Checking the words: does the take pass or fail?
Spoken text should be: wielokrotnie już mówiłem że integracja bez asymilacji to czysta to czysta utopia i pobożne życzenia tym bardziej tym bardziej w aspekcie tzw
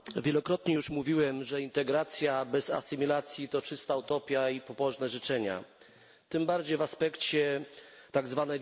fail